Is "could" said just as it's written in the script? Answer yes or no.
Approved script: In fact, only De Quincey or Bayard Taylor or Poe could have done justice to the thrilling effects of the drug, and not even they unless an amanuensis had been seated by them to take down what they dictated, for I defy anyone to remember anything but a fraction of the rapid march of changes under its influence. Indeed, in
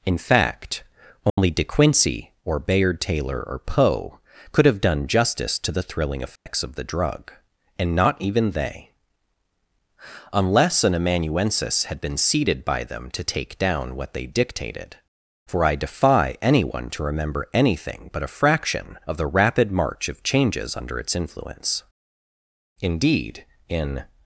yes